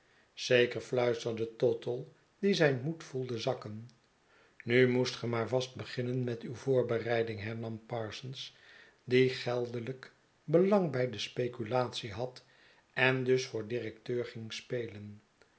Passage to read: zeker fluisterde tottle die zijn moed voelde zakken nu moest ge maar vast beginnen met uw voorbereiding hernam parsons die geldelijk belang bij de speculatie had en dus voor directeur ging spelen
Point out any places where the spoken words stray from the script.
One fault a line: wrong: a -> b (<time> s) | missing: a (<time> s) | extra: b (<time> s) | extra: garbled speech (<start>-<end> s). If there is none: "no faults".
no faults